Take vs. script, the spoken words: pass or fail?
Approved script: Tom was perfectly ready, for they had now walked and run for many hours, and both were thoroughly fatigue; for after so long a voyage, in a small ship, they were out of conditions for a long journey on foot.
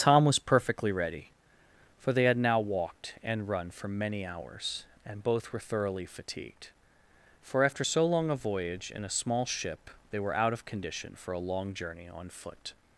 fail